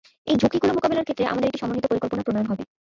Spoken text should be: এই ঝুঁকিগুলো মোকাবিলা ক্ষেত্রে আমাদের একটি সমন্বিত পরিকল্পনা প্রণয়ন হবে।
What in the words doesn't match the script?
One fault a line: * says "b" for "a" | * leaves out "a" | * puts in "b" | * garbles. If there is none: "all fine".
all fine